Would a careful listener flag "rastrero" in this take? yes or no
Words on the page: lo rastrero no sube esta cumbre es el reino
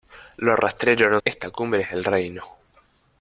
no